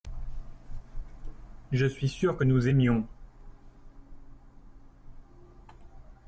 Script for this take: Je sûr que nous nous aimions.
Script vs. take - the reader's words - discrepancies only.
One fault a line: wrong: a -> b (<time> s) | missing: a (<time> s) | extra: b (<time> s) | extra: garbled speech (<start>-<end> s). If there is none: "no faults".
extra: suis (1.9 s)
missing: nous (2.7 s)